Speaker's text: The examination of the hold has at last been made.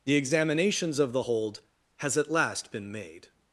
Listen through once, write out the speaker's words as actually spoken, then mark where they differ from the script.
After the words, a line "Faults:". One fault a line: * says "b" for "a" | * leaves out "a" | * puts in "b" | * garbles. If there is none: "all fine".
The examinations of the hold has at last been made.
Faults:
* says "examinations" for "examination"